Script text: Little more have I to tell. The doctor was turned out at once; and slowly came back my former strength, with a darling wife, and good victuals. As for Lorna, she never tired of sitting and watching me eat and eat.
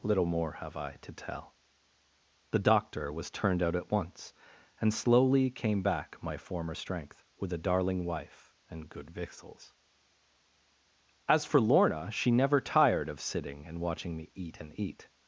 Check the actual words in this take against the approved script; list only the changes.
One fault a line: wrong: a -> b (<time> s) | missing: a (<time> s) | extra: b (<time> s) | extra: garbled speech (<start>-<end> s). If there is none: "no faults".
no faults